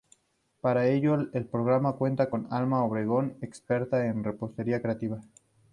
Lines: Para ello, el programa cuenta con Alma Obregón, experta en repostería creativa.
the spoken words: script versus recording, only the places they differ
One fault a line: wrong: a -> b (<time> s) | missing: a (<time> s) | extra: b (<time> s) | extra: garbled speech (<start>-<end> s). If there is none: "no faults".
no faults